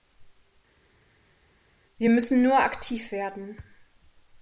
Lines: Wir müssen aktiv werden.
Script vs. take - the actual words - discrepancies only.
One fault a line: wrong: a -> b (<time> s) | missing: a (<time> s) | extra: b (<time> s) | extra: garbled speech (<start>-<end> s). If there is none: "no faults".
extra: nur (2.4 s)